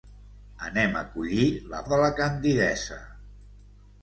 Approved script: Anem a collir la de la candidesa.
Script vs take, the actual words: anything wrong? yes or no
no